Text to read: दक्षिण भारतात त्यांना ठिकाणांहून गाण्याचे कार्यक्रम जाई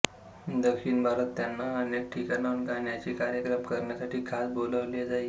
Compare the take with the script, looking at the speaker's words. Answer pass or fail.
fail